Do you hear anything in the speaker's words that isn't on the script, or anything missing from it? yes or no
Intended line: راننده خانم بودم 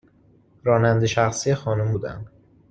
yes